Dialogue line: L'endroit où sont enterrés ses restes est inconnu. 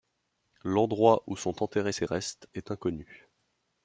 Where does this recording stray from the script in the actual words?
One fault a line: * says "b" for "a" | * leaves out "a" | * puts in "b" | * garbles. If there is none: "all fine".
all fine